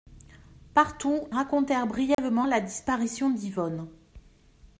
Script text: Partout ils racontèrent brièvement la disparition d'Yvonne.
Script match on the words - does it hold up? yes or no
no